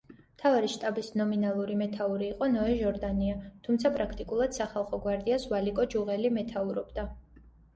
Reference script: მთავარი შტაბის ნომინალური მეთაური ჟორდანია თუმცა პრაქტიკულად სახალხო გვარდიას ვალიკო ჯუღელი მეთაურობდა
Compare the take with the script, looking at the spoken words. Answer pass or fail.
fail